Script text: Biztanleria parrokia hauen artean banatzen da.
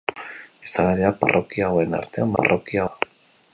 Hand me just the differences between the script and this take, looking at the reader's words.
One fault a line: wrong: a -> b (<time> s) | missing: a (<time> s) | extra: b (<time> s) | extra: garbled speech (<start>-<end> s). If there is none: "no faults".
wrong: banatzen -> parrokia (2.4 s)